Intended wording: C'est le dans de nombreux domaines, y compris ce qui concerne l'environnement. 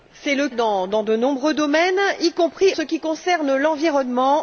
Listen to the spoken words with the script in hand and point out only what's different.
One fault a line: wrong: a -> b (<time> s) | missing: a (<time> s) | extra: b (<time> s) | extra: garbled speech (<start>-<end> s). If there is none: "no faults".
no faults